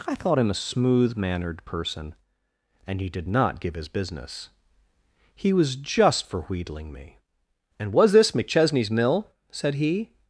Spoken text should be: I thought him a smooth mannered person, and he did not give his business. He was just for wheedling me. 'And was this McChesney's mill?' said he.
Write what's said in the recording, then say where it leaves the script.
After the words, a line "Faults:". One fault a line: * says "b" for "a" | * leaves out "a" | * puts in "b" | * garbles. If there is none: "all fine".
I thought him a smooth mannered person, and he did not give his business. He was just for wheedling me. 'And was this McChesney's mill?' said he.
Faults:
all fine